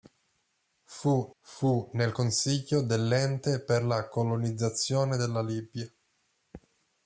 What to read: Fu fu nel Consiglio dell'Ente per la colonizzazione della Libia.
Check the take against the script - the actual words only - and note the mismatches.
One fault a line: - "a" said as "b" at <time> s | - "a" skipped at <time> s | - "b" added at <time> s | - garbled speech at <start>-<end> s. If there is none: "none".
none